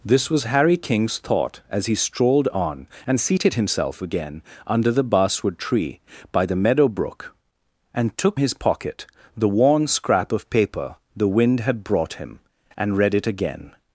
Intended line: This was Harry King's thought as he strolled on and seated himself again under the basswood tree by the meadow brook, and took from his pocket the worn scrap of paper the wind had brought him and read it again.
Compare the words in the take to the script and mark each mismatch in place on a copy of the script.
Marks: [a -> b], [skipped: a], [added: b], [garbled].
This was Harry King's thought as he strolled on and seated himself again under the basswood tree by the meadow brook, and took [skipped: from] his pocket the worn scrap of paper the wind had brought him and read it again.